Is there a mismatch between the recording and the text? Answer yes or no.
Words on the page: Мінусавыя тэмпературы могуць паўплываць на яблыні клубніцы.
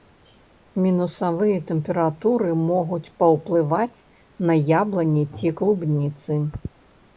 yes